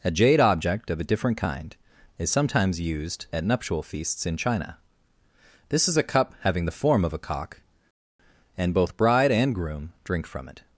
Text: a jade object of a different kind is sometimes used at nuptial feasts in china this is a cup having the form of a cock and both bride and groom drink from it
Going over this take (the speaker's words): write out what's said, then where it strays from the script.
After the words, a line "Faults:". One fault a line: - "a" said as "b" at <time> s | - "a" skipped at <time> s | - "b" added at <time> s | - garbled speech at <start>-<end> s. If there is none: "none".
a jade object of a different kind is sometimes used at nuptial feasts in china this is a cup having the form of a cock and both bride and groom drink from it
Faults:
none